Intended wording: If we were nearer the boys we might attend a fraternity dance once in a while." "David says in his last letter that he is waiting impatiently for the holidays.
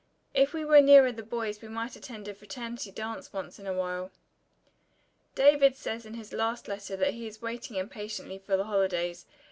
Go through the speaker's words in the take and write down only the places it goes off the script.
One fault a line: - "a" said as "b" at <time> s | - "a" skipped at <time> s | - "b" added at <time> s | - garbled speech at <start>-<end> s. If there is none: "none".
none